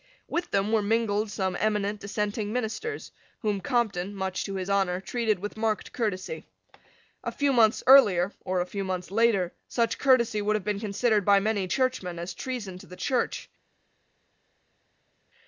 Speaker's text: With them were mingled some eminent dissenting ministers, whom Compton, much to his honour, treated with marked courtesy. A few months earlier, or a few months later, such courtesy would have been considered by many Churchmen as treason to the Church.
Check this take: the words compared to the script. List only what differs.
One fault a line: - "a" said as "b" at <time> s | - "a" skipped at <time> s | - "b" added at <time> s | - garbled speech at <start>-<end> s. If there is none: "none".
none